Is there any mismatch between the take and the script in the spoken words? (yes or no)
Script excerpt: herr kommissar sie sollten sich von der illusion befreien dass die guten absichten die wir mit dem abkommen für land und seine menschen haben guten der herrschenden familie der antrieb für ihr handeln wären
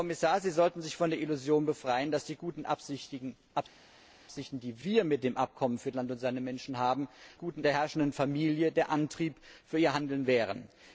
no